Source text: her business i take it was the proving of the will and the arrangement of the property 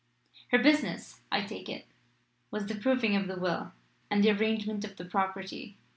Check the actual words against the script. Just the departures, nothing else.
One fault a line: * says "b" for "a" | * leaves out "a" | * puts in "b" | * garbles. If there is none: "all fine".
all fine